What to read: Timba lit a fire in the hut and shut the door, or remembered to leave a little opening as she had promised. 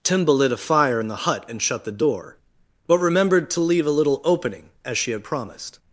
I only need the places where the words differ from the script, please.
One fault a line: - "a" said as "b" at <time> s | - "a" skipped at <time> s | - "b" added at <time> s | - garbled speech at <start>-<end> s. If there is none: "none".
- "or" said as "but" at 2.9 s